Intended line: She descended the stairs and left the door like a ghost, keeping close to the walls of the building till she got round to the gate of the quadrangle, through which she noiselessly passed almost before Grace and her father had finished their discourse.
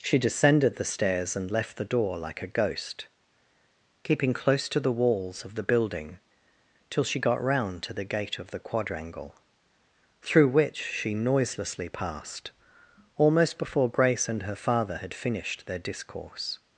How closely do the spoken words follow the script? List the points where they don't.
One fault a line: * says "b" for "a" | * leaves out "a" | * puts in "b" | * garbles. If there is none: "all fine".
all fine